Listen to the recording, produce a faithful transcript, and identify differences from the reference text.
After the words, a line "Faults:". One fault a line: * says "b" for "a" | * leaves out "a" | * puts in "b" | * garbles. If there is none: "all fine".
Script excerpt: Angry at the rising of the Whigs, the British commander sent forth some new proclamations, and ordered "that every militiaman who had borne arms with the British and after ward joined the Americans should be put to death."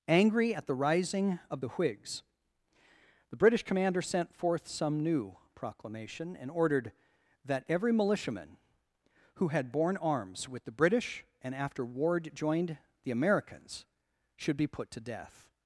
Angry at the rising of the Whigs, the British commander sent forth some new proclamation, and ordered "that every militiaman who had borne arms with the British and after ward joined the Americans should be put to death."
Faults:
* says "proclamation" for "proclamations"